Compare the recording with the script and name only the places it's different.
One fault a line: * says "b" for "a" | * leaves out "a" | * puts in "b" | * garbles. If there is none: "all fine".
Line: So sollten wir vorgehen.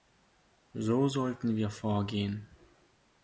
all fine